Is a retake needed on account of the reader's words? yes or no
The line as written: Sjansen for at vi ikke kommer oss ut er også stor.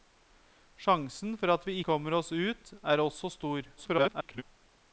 yes